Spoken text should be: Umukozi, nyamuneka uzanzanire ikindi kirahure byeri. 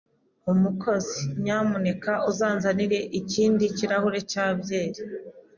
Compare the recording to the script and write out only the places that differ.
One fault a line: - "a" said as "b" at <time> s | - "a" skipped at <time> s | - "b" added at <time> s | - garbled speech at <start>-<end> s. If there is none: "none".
- "cya" added at 4.3 s